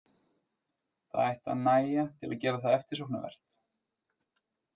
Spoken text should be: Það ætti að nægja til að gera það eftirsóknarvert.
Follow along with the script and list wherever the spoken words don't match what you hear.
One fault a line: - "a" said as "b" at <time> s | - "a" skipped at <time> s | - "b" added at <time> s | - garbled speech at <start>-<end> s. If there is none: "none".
none